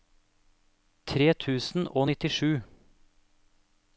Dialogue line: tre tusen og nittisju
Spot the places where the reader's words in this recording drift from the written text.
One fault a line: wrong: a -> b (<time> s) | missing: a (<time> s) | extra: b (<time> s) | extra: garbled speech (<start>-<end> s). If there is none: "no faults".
no faults